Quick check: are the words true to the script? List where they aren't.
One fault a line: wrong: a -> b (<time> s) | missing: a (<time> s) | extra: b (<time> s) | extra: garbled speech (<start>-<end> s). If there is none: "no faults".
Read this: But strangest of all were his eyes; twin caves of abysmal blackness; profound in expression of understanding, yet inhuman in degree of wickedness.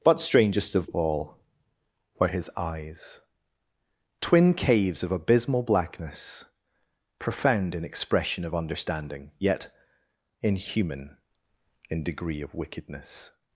no faults